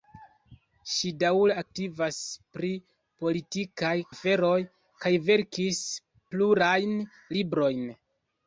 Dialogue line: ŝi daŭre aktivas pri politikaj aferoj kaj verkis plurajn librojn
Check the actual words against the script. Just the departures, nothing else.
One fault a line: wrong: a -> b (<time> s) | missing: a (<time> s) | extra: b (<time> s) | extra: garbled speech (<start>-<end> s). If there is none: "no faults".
no faults